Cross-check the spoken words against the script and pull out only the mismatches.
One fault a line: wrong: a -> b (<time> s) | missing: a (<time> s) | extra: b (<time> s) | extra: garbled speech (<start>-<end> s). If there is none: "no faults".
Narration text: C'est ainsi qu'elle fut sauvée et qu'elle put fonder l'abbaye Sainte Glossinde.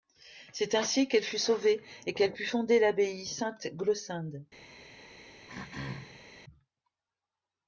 no faults